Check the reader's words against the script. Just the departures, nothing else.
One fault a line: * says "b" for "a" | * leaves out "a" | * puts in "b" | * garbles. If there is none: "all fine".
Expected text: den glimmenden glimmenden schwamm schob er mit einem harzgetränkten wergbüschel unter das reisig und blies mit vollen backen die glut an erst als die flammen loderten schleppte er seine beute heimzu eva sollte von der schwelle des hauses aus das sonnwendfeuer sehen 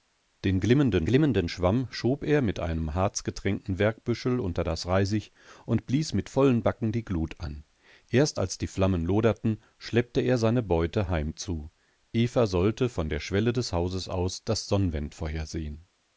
all fine